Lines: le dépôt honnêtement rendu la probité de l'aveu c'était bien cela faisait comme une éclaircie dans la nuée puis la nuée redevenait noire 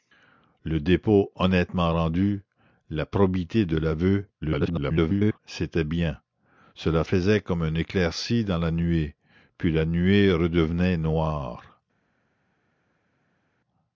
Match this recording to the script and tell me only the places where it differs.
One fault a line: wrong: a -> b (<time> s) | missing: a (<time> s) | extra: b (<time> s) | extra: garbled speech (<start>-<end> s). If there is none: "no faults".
extra: garbled speech (4.4-5.4 s)